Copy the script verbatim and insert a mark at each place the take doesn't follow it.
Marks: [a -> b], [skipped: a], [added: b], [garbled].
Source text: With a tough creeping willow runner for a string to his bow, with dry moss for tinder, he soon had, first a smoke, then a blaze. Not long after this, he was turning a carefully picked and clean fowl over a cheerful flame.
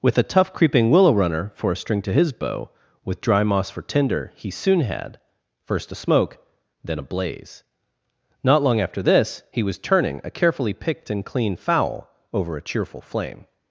With a tough creeping willow runner for a string to his bow, with dry moss for tinder, he soon had, first a smoke, then a blaze. Not long after this, he was turning a carefully picked and clean fowl over a cheerful flame.